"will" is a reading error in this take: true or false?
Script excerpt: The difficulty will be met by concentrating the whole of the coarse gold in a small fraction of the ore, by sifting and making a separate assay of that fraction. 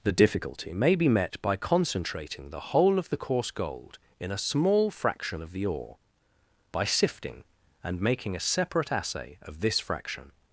true